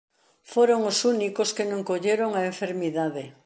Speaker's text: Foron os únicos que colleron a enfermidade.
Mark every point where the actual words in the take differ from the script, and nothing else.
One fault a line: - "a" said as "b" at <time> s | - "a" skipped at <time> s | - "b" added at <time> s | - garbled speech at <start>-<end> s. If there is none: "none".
- "non" added at 1.7 s